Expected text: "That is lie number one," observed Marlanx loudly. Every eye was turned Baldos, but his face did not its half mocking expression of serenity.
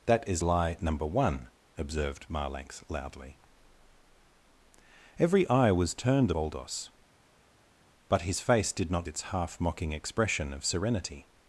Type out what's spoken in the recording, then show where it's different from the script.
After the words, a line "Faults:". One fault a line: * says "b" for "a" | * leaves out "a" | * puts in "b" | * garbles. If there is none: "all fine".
"That is lie number one," observed Marlanx loudly. Every eye was turned Baldos, but his face did not its half mocking expression of serenity.
Faults:
all fine